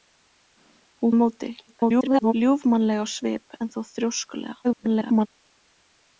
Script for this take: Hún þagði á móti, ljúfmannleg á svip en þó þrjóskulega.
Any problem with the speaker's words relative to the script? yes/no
yes